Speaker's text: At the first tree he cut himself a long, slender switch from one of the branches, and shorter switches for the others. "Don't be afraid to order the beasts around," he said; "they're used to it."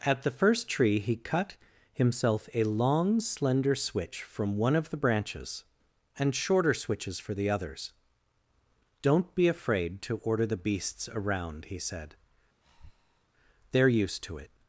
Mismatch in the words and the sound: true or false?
true